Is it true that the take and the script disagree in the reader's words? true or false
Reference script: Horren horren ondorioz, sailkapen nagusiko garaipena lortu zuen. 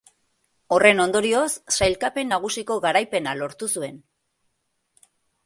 true